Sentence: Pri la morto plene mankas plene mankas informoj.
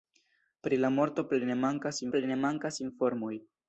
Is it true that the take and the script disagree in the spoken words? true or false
false